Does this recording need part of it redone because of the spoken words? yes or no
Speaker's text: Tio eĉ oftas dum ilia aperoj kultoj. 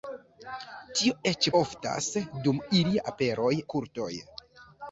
no